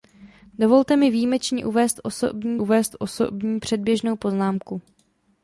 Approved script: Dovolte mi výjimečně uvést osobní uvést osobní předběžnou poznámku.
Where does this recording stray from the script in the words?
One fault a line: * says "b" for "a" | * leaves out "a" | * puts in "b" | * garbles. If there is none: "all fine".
all fine